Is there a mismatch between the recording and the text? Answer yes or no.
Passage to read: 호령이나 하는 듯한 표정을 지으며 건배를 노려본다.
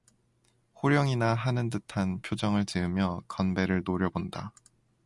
no